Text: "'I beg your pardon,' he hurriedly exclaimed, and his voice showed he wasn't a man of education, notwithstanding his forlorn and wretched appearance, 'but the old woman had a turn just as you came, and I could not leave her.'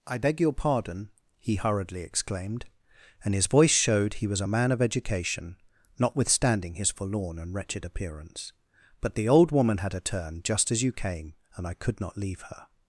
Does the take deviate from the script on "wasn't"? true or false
true